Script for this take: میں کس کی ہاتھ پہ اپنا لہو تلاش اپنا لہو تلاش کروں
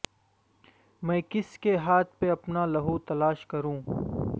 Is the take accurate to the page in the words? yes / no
no